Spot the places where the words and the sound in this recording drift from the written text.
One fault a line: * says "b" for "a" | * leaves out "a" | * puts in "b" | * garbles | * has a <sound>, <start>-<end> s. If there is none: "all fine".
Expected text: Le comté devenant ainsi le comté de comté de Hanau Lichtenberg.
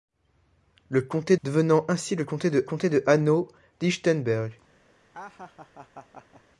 * has a laugh, 5.1-6.4 s